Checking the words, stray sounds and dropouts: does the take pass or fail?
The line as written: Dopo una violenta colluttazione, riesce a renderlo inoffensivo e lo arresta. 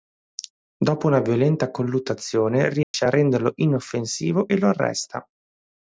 fail